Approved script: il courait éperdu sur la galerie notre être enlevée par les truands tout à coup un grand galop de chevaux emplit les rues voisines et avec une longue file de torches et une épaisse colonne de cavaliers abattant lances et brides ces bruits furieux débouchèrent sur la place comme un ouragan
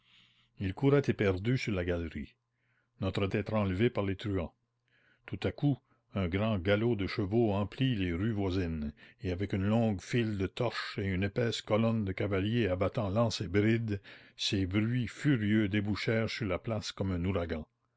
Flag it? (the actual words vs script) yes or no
no